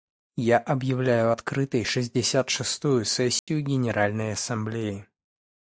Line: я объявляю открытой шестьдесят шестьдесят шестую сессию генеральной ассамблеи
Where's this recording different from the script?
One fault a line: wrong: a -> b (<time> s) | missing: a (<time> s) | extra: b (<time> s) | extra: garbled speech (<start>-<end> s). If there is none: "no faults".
missing: шестьдесят (2.5 s)